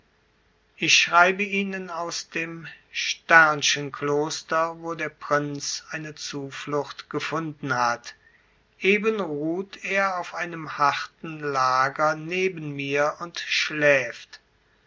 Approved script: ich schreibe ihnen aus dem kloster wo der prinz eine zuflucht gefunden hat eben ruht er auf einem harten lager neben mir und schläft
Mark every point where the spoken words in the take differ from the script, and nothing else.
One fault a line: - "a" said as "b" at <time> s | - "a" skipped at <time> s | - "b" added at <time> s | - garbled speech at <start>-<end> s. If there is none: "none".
none